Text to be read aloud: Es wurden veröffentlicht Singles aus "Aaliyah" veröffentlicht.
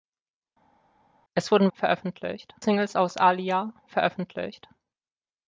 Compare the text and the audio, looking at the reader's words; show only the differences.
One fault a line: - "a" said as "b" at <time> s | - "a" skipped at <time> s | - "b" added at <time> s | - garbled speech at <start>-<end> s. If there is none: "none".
none